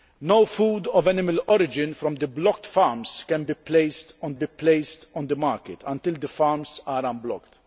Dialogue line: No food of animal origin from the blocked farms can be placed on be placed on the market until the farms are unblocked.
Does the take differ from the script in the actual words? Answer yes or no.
no